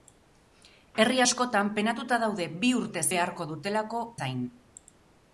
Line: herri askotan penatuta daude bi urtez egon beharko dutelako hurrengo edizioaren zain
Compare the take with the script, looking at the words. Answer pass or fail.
fail